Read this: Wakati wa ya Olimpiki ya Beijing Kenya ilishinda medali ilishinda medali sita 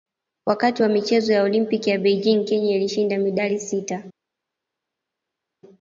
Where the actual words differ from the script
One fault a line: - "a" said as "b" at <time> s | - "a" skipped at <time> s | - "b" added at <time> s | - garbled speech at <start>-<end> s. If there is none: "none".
- "michezo" added at 0.9 s
- "ilishinda medali" skipped at 3.6 s